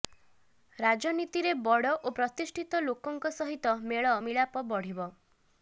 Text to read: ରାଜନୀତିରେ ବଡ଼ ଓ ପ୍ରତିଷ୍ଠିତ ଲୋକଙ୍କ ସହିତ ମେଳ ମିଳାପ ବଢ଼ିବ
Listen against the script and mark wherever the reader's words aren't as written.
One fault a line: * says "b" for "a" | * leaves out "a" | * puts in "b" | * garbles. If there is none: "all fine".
all fine